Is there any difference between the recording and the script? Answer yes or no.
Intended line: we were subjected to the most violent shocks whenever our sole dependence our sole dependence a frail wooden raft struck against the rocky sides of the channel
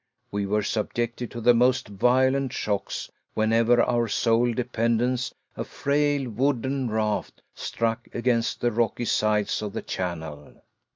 yes